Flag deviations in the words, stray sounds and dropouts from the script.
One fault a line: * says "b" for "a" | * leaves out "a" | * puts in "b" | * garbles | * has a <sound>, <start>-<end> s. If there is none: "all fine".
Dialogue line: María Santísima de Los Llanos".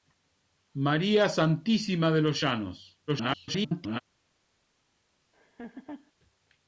* garbles
* has a laugh, 5.3-6.1 s